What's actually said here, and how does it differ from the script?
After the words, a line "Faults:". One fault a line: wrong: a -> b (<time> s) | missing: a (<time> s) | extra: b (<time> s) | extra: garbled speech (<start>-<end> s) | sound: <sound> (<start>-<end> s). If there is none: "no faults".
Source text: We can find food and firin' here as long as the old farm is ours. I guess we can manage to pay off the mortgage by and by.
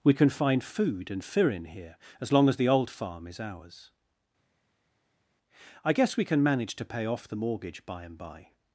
We can find food and firin' here as long as the old farm is ours. I guess we can manage to pay off the mortgage by and by.
Faults:
no faults